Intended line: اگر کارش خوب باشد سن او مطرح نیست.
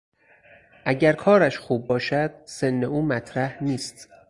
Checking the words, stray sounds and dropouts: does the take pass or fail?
pass